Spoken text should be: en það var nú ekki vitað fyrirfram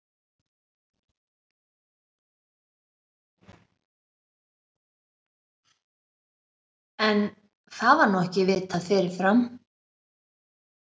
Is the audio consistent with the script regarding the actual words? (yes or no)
yes